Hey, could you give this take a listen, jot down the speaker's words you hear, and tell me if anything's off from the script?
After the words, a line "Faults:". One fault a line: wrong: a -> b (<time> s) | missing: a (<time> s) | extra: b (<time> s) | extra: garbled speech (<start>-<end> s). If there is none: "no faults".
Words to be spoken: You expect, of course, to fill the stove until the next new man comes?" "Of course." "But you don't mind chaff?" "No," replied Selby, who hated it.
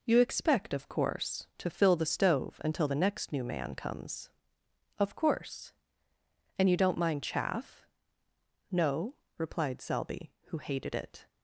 You expect, of course, to fill the stove until the next new man comes?" "Of course." "And you don't mind chaff?" "No," replied Selby, who hated it.
Faults:
wrong: But -> And (6.6 s)